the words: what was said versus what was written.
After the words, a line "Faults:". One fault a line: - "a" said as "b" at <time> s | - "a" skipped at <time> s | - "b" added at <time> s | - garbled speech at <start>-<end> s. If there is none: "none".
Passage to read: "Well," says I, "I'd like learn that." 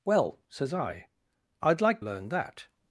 "Well," says I, "I'd like learn that."
Faults:
none